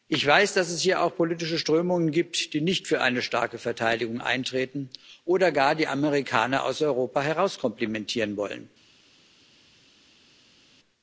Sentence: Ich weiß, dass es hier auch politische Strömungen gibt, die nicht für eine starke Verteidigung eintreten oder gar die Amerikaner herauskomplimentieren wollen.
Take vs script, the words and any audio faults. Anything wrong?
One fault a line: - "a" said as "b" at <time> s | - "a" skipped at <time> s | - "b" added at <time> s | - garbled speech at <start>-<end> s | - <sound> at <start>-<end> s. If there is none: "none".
- "aus Europa" added at 6.7 s